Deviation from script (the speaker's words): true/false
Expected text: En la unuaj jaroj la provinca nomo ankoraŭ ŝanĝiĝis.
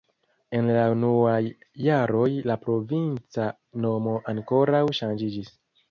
false